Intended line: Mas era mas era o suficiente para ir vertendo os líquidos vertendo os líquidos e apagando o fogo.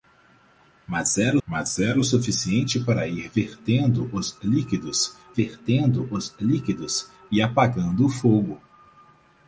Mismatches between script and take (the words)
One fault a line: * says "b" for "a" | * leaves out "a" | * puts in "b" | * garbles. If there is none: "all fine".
all fine